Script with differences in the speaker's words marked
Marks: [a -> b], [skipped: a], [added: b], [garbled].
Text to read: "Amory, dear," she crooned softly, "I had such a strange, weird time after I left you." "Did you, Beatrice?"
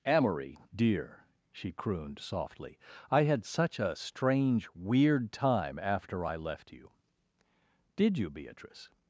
"Amory, dear," she crooned softly, "I had such a strange, weird time after I left you." "Did you, Beatrice?"